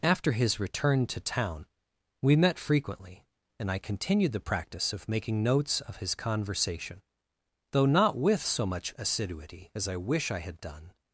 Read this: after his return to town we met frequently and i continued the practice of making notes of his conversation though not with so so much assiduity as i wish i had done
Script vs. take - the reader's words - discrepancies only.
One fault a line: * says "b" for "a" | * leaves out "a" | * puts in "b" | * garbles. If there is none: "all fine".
* leaves out "so"